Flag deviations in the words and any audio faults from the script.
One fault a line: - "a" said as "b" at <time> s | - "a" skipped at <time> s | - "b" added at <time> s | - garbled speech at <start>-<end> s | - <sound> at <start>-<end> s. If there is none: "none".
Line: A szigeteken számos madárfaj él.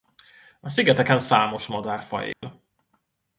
- dropout at 2.3-2.4 s